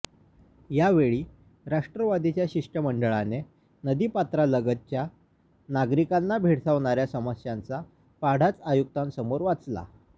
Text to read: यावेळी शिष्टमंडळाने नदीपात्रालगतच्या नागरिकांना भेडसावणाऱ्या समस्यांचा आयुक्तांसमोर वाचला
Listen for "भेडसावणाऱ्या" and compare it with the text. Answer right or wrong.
right